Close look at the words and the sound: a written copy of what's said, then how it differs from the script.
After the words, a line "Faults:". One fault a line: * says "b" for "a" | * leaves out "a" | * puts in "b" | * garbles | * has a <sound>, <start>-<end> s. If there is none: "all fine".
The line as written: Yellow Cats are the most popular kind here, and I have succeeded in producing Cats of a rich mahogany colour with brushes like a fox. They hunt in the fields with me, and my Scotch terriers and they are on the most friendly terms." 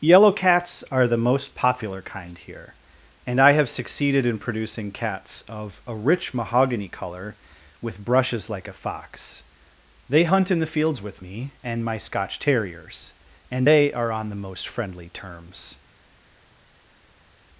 Yellow Cats are the most popular kind here, and I have succeeded in producing Cats of a rich mahogany colour with brushes like a fox. They hunt in the fields with me, and my Scotch terriers and they are on the most friendly terms."
Faults:
all fine